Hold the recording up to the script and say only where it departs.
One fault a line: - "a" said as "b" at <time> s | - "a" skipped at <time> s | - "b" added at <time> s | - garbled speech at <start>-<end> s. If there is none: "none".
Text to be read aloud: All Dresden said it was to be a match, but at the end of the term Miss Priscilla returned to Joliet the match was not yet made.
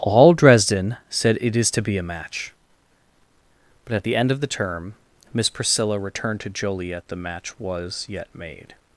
- "was" said as "is" at 1.6 s
- "not" skipped at 8.1 s